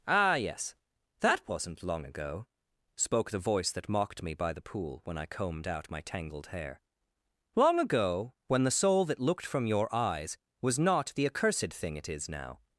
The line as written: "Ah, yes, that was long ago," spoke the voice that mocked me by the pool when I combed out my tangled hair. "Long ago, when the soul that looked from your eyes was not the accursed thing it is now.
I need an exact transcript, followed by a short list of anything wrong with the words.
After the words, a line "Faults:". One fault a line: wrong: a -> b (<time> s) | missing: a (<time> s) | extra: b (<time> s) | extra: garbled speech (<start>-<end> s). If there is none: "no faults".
"Ah, yes, that wasn't long ago," spoke the voice that mocked me by the pool when I combed out my tangled hair. "Long ago, when the soul that looked from your eyes was not the accursed thing it is now.
Faults:
wrong: was -> wasn't (1.5 s)